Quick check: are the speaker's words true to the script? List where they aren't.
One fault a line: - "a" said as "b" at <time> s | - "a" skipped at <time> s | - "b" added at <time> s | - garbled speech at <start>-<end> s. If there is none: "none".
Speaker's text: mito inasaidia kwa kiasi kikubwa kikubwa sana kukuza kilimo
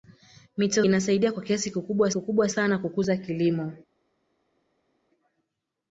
none